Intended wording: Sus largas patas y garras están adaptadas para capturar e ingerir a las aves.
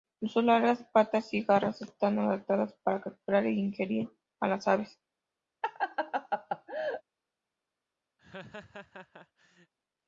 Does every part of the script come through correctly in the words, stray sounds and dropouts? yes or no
no